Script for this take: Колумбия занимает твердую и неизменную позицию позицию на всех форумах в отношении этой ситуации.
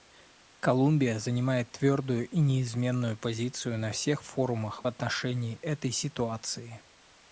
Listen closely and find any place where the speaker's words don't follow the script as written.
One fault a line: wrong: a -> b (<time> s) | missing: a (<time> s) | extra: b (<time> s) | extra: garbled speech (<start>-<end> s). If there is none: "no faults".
missing: позицию (3.8 s)